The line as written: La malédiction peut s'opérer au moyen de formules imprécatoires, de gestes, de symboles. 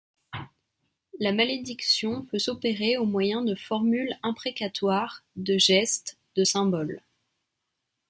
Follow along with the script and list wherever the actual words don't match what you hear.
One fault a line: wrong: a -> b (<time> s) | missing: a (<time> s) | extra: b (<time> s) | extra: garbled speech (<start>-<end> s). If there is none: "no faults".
no faults